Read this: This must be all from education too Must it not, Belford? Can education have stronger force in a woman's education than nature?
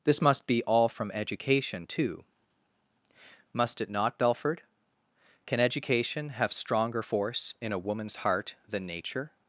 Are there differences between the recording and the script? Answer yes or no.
yes